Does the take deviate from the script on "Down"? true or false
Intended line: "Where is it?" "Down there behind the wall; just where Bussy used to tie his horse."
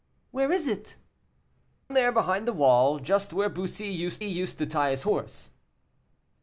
true